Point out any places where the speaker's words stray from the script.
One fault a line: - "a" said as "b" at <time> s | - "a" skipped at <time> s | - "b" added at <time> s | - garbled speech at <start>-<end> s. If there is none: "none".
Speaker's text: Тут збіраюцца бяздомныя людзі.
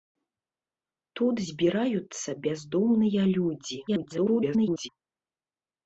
- garbled speech at 3.9-4.9 s